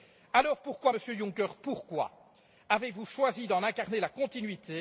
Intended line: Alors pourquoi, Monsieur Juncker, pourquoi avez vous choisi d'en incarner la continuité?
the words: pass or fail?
pass